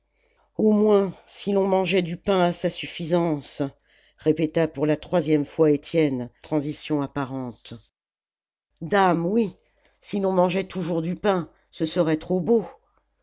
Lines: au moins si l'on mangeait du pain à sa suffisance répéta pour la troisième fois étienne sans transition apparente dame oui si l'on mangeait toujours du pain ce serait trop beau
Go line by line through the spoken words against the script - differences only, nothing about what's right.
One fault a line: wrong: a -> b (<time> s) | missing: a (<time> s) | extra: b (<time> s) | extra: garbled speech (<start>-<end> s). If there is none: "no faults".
missing: sans (6.3 s)